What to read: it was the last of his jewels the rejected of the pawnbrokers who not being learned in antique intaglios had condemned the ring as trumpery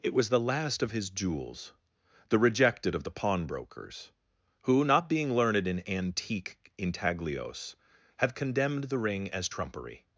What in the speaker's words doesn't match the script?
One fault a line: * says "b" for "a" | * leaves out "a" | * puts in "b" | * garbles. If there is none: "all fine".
* says "have" for "had"